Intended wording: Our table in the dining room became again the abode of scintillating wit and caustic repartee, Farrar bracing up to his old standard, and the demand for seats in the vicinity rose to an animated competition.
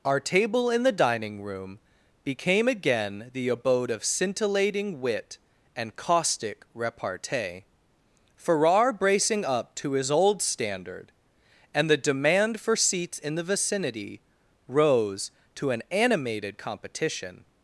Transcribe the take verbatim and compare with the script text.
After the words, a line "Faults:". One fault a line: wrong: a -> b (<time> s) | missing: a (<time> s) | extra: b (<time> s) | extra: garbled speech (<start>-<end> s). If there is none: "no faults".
Our table in the dining room became again the abode of scintillating wit and caustic repartee, Farrar bracing up to his old standard, and the demand for seats in the vicinity rose to an animated competition.
Faults:
no faults